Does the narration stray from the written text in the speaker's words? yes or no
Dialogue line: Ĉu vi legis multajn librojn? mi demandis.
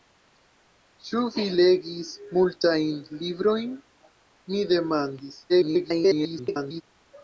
yes